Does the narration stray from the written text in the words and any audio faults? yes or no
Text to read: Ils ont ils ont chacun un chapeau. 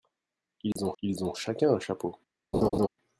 yes